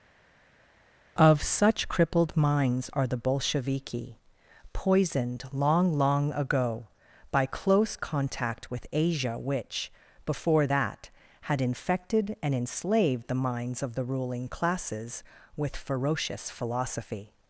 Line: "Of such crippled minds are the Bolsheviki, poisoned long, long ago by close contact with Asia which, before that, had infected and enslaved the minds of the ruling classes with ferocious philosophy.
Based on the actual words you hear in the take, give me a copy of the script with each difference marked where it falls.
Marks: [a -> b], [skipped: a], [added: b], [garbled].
"Of such crippled minds are the Bolsheviki, poisoned long, long ago by close contact with Asia which, before that, had infected and enslaved the minds of the ruling classes with ferocious philosophy.